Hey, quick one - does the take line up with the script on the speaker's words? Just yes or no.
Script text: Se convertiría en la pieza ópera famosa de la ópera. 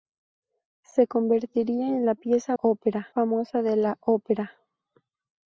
yes